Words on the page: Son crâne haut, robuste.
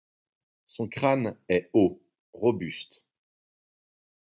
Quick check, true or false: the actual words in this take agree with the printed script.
false